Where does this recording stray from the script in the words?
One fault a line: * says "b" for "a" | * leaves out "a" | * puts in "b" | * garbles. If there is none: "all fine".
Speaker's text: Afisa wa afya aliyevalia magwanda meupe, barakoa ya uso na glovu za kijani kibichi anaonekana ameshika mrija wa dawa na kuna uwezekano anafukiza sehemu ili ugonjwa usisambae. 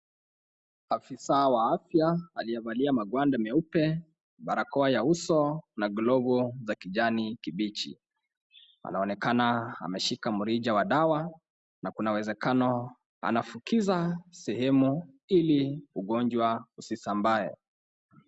all fine